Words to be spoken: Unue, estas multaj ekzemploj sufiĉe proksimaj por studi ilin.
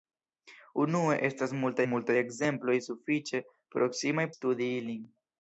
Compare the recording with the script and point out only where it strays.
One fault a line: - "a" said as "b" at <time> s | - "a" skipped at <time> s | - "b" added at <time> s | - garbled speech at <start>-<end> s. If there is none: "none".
- "multaj" added at 1.9 s
- "por" skipped at 4.3 s